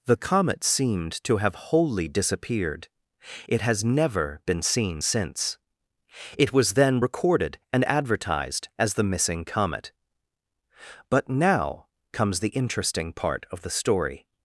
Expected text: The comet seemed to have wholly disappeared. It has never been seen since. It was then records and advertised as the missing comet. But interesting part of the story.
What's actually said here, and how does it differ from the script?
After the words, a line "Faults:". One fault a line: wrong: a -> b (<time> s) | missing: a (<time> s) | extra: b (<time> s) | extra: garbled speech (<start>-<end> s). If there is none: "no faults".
The comet seemed to have wholly disappeared. It has never been seen since. It was then recorded and advertised as the missing comet. But now comes the interesting part of the story.
Faults:
wrong: records -> recorded (7.0 s)
extra: now comes the (11.3 s)